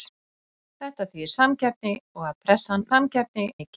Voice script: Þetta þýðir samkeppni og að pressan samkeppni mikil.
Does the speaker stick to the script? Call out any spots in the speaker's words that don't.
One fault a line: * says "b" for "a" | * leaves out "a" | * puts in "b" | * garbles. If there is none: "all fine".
all fine